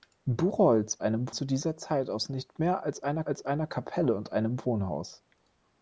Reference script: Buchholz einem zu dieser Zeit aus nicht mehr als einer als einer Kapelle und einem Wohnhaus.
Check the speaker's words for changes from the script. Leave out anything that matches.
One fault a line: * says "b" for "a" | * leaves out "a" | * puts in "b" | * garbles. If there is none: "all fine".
all fine